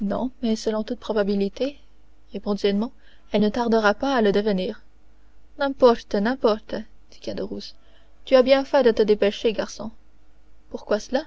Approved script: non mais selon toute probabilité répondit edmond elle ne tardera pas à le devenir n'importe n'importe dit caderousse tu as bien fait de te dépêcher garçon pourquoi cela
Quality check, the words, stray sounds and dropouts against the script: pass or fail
pass